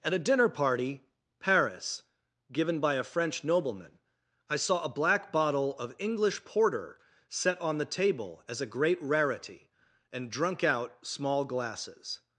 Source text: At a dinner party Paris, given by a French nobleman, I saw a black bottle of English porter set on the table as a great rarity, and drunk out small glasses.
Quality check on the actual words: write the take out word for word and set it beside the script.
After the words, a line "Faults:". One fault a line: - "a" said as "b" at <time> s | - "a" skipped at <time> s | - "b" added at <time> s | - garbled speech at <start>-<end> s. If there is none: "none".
At a dinner party Paris, given by a French nobleman, I saw a black bottle of English porter set on the table as a great rarity, and drunk out small glasses.
Faults:
none